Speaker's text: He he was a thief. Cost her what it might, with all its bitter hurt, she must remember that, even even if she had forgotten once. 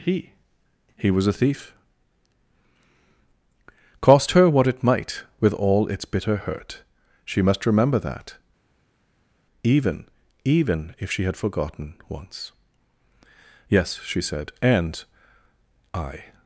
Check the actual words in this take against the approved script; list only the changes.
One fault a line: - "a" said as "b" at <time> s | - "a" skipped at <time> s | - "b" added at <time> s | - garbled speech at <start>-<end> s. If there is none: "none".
- "Yes she said And I" added at 13.7 s